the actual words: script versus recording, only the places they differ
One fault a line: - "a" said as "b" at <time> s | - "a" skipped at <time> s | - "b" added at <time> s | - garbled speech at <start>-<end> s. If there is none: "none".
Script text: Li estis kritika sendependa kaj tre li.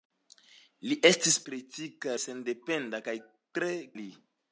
none